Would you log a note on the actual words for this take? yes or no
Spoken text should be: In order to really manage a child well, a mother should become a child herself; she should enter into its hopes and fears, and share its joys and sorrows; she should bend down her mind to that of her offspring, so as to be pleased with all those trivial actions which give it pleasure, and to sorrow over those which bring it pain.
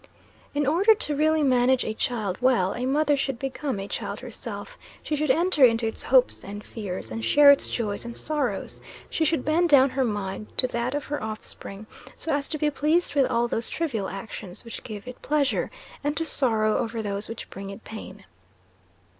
no